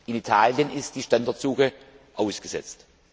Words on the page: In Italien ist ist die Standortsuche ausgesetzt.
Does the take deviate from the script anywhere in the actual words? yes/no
yes